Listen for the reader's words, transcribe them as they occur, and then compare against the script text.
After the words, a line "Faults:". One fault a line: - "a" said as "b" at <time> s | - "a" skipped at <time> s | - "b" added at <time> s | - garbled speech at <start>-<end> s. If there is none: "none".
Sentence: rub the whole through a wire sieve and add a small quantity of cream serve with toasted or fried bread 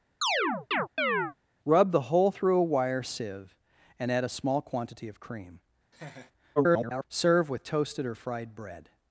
rub the whole through a wire sieve and add a small quantity of cream [garbled] serve with toasted or fried bread
Faults:
- garbled speech at 6.6-7.0 s